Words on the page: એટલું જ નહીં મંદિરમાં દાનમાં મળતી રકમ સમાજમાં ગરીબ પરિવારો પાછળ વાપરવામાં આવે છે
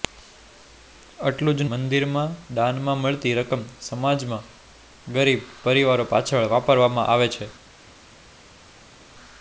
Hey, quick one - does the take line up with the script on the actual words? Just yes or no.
no